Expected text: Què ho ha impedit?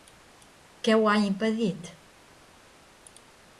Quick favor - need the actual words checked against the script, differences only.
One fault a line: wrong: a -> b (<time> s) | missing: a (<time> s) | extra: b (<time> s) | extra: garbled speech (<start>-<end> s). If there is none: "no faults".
no faults